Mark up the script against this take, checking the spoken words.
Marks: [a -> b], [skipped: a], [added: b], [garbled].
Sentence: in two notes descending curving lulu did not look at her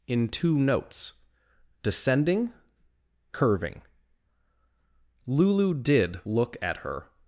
in two notes descending curving lulu did [skipped: not] look at her